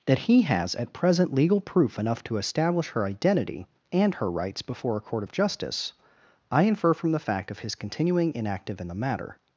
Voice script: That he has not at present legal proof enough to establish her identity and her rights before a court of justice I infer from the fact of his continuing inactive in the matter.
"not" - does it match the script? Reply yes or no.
no